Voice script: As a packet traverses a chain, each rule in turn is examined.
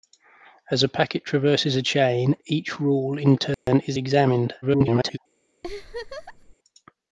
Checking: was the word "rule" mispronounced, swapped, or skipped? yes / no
no